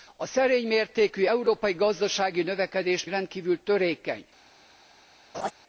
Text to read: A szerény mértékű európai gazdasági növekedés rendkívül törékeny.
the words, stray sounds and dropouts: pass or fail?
fail